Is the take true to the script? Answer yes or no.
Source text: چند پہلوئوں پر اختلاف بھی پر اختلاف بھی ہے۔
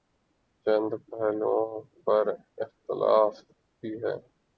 no